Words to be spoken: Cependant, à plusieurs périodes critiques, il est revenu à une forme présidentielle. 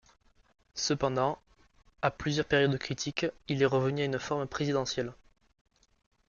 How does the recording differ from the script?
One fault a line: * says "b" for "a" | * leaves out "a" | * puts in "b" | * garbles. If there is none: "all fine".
all fine